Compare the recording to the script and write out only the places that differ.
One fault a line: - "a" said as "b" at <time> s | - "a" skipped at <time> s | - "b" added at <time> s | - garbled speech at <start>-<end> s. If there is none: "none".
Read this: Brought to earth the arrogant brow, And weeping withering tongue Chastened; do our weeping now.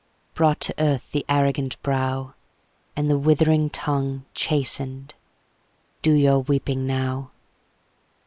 - "weeping" said as "the" at 3.1 s
- "our" said as "your" at 6.1 s